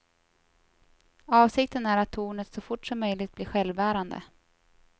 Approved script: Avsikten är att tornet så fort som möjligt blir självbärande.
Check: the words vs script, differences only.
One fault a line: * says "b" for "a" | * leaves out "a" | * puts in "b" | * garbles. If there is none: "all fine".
all fine